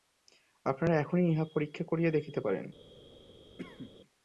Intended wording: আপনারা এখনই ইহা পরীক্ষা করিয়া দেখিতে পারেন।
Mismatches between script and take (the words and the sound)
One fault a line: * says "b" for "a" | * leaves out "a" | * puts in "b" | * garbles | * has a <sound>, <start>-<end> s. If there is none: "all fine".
* has a cough, 3.6-4.0 s